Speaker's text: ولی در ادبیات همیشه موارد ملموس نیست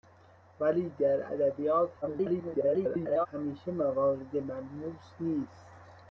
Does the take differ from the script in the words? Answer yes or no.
yes